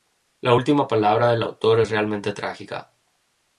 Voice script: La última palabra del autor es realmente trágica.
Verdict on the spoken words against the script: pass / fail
pass